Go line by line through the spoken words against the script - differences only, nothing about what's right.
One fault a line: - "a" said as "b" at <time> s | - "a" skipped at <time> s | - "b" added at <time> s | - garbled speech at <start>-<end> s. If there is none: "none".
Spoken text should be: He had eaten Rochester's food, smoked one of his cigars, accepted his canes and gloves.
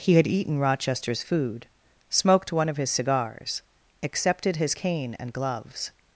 - "canes" said as "cane" at 4.7 s